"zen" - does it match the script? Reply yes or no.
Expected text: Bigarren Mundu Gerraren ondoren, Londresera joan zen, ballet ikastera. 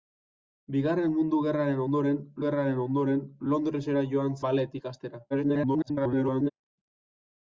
no